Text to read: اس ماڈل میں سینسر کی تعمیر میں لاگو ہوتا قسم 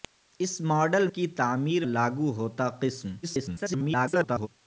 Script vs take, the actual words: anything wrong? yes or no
yes